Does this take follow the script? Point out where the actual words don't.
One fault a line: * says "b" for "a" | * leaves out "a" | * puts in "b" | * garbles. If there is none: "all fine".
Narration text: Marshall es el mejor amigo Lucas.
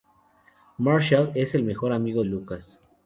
all fine